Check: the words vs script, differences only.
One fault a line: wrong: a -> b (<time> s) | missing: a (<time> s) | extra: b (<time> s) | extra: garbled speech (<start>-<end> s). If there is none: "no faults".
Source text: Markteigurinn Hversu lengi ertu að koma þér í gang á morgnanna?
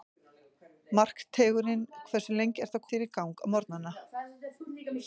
missing: koma (2.9 s)